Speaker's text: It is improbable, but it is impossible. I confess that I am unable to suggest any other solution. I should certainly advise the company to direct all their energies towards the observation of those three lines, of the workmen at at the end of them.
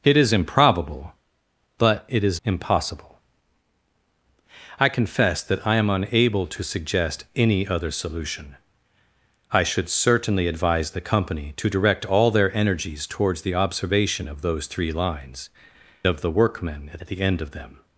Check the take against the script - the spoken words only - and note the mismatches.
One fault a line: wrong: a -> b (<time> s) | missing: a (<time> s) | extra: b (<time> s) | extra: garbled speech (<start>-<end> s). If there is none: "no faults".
no faults